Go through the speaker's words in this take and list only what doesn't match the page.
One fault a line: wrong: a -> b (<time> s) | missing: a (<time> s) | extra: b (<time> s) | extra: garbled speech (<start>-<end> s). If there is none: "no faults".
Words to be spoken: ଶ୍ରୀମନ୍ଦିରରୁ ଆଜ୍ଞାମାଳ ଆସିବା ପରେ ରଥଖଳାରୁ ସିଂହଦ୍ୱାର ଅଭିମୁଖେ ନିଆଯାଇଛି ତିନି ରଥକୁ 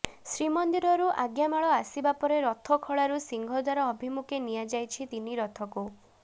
no faults